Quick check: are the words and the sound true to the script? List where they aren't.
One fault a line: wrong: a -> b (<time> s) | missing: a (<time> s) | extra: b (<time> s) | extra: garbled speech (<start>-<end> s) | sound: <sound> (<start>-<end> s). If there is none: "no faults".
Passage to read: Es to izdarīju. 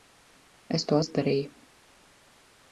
no faults